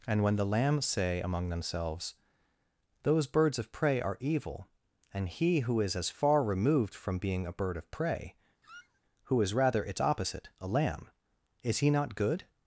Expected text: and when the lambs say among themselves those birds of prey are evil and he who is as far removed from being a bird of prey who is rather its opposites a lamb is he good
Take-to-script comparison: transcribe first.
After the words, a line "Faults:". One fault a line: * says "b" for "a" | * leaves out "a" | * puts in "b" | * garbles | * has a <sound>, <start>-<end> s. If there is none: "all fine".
and when the lambs say among themselves those birds of prey are evil and he who is as far removed from being a bird of prey who is rather its opposite a lamb is he not good
Faults:
* has a squeak, 8.6-9.0 s
* says "opposite" for "opposites"
* puts in "not"